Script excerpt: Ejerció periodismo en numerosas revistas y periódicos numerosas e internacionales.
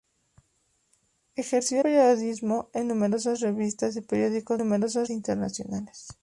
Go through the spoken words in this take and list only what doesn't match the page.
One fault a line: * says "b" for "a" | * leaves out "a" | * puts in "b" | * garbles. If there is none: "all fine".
all fine